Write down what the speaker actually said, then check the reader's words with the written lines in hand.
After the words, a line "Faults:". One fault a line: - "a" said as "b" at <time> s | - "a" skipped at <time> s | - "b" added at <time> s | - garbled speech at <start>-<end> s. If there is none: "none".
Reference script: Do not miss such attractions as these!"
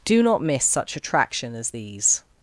Do not miss such attraction as these!"
Faults:
- "attractions" said as "attraction" at 0.9 s